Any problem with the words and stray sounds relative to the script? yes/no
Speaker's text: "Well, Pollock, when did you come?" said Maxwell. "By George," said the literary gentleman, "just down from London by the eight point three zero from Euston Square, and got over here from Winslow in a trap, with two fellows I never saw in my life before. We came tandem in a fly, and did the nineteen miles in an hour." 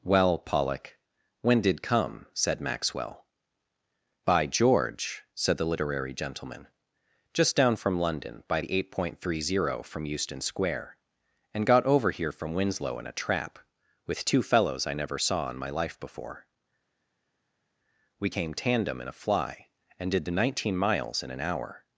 yes